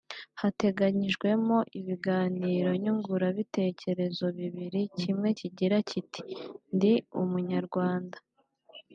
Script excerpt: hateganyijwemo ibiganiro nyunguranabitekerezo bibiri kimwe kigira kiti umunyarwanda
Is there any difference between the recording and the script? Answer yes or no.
yes